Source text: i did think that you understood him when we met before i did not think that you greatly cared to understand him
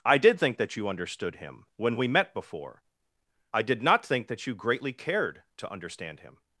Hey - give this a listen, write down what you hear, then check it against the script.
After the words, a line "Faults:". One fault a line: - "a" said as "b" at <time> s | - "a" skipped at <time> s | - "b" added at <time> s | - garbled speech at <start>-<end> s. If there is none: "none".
i did think that you understood him when we met before i did not think that you greatly cared to understand him
Faults:
none